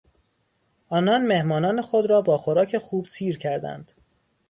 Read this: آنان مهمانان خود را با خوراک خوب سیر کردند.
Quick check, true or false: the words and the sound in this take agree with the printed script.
true